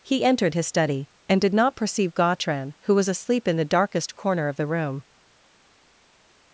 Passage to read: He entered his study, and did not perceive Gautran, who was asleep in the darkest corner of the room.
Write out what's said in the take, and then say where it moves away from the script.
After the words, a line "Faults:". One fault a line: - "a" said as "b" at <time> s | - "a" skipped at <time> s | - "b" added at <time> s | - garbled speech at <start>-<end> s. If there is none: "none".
He entered his study, and did not perceive Gautran, who was asleep in the darkest corner of the room.
Faults:
none